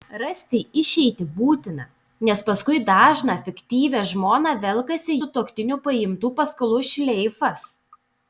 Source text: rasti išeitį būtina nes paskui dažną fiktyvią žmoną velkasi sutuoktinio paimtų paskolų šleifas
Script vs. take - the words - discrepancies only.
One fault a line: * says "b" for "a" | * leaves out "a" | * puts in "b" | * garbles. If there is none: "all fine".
all fine